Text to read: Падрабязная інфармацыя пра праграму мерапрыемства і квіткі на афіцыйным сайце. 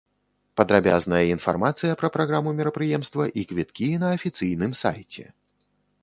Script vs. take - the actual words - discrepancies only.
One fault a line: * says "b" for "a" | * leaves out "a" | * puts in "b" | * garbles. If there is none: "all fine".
all fine